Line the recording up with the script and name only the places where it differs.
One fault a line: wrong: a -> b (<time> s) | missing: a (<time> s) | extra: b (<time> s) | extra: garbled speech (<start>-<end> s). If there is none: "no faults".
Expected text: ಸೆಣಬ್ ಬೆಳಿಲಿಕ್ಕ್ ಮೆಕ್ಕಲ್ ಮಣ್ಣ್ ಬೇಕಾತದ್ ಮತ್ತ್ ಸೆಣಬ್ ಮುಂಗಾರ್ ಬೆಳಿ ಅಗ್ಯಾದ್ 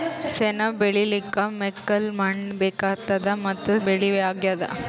missing: ಸೆಣಬ್ ಮುಂಗಾರ್ (3.7 s)